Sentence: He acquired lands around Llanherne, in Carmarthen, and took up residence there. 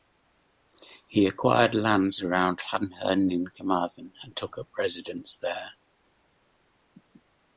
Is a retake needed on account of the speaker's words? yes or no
no